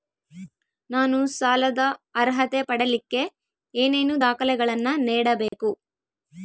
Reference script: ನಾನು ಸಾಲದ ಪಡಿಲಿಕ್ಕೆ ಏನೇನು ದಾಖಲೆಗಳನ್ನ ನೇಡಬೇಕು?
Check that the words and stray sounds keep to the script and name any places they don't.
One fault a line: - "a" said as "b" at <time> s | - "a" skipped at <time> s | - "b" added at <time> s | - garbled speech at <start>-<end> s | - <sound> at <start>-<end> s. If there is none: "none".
- "ಅರ್ಹತೆ" added at 2.2 s
- dropout at 5.5-5.5 s